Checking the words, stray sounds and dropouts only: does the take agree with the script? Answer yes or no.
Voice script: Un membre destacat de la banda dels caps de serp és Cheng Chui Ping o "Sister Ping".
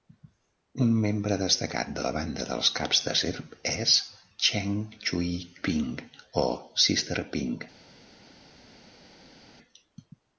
yes